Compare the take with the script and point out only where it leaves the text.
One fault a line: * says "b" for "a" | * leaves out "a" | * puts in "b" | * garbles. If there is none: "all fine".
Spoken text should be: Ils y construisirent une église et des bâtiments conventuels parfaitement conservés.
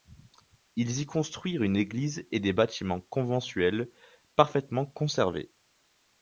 all fine